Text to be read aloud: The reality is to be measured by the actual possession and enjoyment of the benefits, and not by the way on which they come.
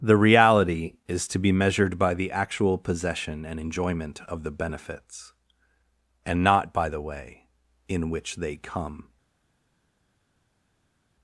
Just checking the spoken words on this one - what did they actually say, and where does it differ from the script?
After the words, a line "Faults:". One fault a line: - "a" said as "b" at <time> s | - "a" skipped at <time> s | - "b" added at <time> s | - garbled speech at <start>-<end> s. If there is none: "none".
The reality is to be measured by the actual possession and enjoyment of the benefits, and not by the way in which they come.
Faults:
- "on" said as "in" at 7.9 s